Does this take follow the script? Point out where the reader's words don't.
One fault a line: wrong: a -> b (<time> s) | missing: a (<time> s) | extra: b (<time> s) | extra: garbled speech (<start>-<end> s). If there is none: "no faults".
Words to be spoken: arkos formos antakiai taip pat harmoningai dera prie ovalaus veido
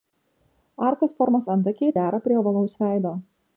missing: taip pat harmoningai (1.9 s)